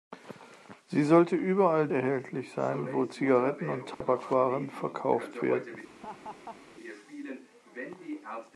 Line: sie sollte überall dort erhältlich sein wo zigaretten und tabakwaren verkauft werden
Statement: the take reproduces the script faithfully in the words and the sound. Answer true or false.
false